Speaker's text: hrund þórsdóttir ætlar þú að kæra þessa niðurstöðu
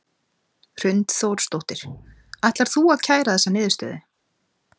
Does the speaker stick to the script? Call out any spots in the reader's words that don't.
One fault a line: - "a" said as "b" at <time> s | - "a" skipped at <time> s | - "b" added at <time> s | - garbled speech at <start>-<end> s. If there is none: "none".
none